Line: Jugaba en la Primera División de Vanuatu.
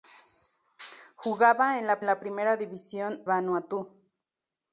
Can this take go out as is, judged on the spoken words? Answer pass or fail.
fail